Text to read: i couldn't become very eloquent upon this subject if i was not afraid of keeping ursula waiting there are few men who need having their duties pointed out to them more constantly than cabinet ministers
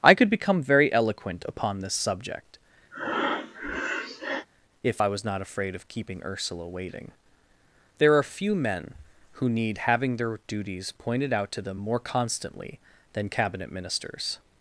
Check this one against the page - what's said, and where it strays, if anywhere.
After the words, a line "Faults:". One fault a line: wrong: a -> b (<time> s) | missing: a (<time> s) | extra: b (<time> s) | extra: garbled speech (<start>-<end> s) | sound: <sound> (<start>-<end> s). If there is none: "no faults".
i could become very eloquent upon this subject if i was not afraid of keeping ursula waiting there are few men who need having their duties pointed out to them more constantly than cabinet ministers
Faults:
wrong: couldn't -> could (0.1 s)
sound: breath (2.9-4.5 s)